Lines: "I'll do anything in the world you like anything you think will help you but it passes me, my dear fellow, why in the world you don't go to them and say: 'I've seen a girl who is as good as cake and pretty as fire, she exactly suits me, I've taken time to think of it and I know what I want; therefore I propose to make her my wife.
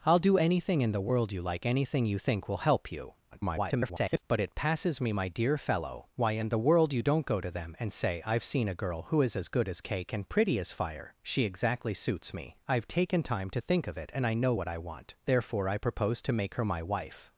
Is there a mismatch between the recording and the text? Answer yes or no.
yes